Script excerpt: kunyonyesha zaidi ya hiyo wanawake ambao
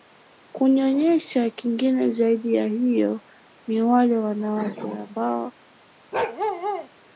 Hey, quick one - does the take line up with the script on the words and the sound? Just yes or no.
no